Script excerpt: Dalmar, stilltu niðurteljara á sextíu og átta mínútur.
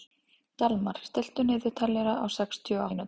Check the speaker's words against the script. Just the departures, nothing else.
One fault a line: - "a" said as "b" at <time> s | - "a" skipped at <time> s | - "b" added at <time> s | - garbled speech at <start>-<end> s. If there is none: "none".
- "átta" skipped at 2.9 s